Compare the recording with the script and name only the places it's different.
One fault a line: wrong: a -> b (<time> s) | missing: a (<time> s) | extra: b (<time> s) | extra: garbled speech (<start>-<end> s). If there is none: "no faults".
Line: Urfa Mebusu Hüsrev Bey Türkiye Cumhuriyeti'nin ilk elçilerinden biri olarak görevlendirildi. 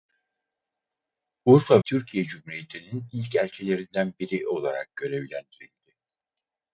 missing: Mebusu Hüsrev Bey (1.8 s)